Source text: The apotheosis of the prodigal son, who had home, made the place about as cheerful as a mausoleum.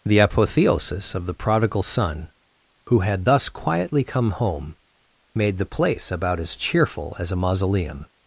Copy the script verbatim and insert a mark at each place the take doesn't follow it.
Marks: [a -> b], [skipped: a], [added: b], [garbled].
The apotheosis of the prodigal son, who had [added: thus quietly come] home, made the place about as cheerful as a mausoleum.